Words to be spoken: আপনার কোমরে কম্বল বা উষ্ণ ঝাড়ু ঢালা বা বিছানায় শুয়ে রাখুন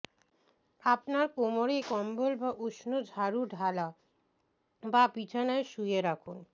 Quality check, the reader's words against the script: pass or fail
pass